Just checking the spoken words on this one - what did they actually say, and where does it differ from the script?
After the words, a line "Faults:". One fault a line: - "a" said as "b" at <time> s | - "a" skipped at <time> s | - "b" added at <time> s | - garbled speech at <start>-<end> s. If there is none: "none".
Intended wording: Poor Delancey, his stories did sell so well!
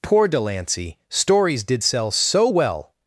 Poor Delancey, stories did sell so well!
Faults:
- "his" skipped at 1.0 s